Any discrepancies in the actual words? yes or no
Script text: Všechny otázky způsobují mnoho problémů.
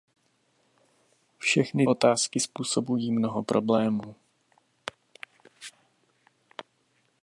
no